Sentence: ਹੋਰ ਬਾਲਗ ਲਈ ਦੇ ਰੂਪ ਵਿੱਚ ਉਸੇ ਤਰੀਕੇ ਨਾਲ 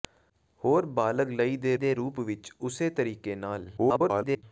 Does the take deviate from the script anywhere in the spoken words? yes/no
yes